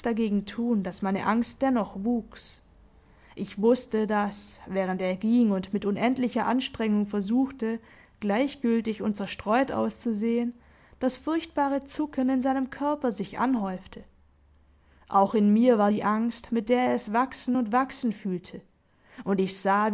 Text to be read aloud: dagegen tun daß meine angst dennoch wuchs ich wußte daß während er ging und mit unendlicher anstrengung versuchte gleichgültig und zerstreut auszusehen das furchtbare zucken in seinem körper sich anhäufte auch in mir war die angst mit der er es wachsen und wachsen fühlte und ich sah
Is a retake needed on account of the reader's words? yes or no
no